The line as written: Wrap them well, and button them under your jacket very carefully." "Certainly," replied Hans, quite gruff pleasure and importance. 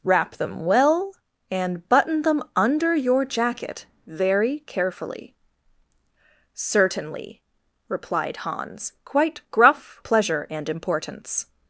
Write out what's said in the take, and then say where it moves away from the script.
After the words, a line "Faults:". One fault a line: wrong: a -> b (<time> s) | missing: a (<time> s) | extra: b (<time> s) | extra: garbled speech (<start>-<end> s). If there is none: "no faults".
Wrap them well, and button them under your jacket very carefully." "Certainly," replied Hans, quite gruff pleasure and importance.
Faults:
no faults